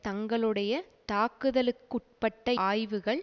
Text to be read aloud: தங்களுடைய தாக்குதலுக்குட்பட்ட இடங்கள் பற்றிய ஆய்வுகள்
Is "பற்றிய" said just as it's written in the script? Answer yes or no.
no